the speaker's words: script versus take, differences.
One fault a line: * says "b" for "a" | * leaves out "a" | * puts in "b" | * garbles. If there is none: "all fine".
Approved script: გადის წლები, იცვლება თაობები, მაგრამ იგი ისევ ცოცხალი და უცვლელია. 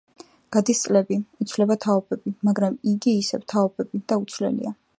* says "თაობები" for "ცოცხალი"